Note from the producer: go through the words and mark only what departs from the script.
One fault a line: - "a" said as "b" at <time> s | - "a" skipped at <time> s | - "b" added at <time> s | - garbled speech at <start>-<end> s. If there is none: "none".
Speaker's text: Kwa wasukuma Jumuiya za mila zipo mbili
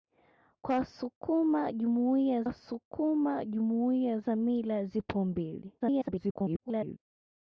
- "wasukuma Jumuiya" added at 2.4 s
- garbled speech at 5.8-7.0 s